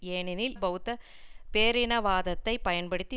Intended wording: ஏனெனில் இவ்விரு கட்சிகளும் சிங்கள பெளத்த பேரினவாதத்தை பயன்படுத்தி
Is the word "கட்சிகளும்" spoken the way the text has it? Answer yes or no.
no